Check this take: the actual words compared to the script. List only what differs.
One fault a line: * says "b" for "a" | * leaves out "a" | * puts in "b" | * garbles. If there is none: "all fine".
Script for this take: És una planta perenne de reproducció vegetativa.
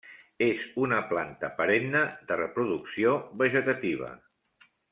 all fine